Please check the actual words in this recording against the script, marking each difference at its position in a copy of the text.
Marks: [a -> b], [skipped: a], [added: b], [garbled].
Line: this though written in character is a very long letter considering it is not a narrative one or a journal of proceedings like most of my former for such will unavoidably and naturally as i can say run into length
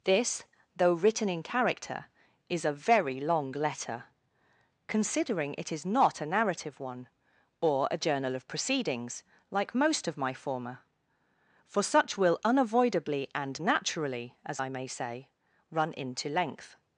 this though written in character is a very long letter considering it is not a narrative one or a journal of proceedings like most of my former for such will unavoidably and naturally as i [can -> may] say run into length